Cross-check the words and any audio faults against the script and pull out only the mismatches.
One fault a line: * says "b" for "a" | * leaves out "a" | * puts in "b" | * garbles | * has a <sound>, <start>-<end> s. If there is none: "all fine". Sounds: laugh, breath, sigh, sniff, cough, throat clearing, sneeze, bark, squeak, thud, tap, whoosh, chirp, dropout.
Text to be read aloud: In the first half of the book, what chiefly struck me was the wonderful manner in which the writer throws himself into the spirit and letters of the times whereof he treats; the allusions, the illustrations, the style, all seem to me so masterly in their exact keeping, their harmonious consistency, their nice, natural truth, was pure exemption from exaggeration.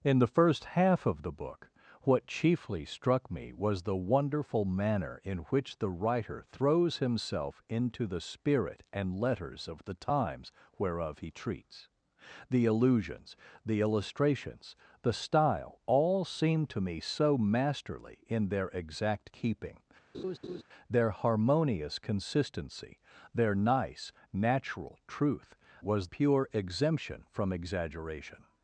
* has a laugh, 20.1-20.6 s